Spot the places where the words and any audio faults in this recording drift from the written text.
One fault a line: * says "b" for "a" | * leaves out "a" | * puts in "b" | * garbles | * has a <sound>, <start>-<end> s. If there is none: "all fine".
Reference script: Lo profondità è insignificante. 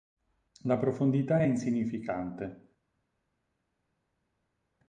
* says "La" for "Lo"